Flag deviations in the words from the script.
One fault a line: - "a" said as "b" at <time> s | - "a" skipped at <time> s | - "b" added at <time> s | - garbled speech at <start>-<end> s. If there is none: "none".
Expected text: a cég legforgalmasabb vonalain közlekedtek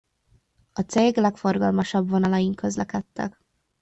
none